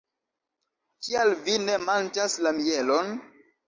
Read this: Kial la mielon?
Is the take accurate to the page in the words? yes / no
no